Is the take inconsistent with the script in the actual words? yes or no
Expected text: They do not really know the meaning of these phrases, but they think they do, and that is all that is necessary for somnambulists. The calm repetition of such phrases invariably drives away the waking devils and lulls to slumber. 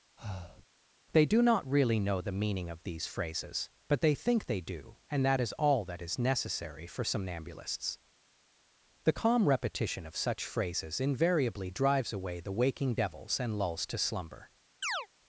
no